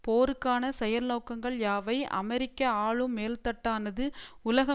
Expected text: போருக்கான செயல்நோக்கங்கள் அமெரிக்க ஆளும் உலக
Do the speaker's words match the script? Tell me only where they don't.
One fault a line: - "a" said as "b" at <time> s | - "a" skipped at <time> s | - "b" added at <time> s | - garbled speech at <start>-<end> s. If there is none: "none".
- "யாவை" added at 1.6 s
- "மேல்தட்டானது" added at 3.2 s